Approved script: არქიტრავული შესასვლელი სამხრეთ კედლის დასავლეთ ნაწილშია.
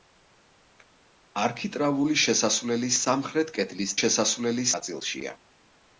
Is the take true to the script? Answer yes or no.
no